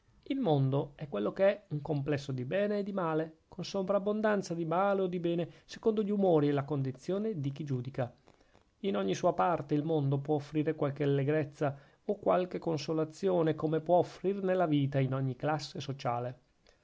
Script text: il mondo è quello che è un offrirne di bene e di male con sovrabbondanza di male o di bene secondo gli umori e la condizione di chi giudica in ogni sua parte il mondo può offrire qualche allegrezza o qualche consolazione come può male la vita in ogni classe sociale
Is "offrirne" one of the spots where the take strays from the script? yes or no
yes